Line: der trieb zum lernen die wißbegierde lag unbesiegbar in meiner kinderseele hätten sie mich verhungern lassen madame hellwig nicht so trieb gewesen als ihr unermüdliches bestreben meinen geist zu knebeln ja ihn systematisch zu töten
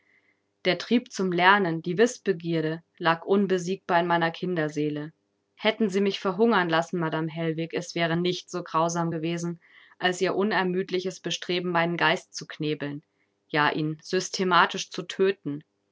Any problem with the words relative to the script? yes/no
yes